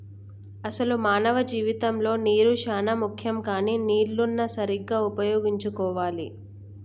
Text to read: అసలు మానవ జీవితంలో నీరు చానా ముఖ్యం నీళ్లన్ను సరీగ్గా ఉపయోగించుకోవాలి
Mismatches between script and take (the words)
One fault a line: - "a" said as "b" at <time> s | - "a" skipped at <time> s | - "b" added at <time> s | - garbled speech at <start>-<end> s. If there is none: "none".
- "కానీ" added at 3.5 s